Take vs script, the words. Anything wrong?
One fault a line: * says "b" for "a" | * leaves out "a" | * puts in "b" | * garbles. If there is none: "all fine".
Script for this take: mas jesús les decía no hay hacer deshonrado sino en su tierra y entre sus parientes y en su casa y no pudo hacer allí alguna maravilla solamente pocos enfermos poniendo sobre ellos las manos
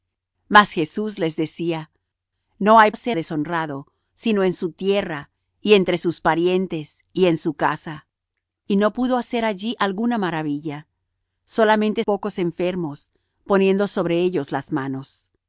all fine